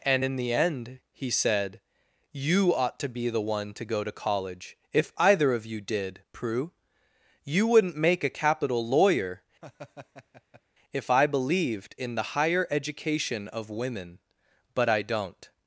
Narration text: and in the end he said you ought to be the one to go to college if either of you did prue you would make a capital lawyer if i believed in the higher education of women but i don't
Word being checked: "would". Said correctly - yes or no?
no